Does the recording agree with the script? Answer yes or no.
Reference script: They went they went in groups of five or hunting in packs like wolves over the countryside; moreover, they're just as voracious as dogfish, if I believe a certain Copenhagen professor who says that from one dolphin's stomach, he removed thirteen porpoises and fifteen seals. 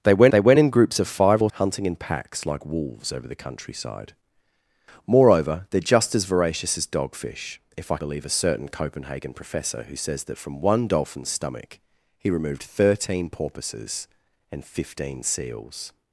yes